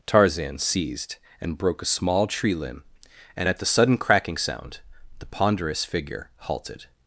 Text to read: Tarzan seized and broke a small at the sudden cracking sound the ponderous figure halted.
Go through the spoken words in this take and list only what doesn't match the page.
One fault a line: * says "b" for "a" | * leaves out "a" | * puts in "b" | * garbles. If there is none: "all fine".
* puts in "tree limb and"